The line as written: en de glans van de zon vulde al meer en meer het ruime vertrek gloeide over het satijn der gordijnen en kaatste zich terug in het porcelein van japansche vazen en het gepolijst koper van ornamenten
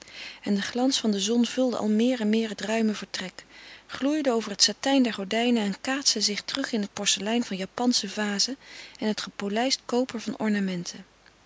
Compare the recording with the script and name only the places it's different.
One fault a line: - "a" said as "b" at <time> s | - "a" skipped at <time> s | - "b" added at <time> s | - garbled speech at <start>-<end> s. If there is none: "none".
none